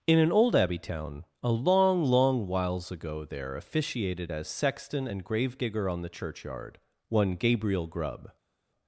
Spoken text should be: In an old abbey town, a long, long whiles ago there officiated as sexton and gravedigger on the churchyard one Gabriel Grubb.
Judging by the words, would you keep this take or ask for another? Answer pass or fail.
pass